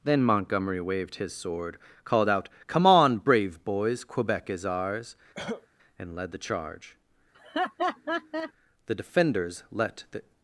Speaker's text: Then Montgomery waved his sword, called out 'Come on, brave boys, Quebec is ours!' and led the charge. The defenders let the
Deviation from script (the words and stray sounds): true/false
true